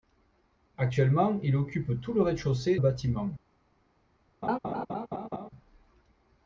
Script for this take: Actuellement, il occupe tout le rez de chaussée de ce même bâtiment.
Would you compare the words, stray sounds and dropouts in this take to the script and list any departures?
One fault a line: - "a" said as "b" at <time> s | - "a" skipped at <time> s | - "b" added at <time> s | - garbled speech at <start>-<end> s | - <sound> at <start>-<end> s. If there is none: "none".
- "de ce même" skipped at 2.8 s
- laugh at 4.4-5.5 s